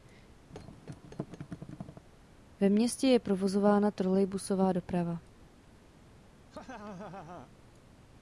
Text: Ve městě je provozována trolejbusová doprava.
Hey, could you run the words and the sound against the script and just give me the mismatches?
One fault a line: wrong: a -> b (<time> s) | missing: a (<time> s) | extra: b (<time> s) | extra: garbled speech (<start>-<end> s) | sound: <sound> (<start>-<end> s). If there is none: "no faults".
sound: thud (0.5-2.0 s)
sound: laugh (6.5-7.5 s)